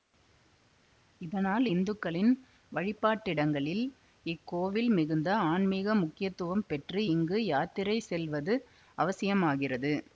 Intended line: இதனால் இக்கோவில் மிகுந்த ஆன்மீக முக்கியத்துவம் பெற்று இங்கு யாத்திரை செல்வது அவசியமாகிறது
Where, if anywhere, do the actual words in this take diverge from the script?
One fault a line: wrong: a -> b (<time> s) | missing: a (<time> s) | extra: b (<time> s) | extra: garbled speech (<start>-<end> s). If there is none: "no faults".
extra: இந்துக்களின் வழிபாட்டிடங்களில் (1.7 s)